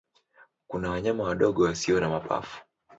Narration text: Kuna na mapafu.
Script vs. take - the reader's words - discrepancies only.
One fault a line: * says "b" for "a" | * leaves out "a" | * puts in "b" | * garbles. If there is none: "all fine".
* puts in "wanyama wadogo wasio"